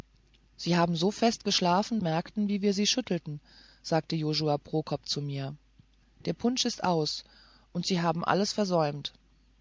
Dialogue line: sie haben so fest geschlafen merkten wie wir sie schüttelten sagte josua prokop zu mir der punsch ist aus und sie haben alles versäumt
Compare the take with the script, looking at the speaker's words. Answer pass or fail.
pass